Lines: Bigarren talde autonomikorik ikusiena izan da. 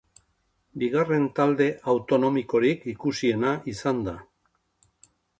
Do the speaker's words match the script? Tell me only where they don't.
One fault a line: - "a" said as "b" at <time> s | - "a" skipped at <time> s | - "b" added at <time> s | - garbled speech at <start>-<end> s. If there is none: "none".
none